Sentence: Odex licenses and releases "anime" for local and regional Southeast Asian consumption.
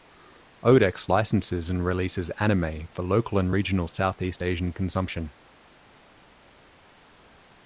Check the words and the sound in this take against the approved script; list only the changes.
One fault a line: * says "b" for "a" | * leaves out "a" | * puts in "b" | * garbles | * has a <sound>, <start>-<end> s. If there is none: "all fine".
all fine